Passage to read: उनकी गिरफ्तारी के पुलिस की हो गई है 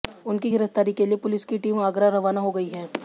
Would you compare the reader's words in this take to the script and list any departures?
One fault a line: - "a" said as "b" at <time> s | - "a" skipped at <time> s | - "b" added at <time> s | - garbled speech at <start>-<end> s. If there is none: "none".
- "लिए" added at 1.0 s
- "टीम आगरा रवाना" added at 1.6 s